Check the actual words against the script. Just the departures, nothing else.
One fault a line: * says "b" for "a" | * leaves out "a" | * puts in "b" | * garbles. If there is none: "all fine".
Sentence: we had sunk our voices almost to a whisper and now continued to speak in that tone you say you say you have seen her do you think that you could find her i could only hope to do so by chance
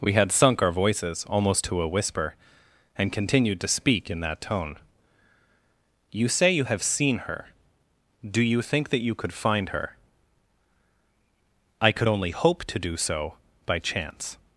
* leaves out "now"
* leaves out "say you"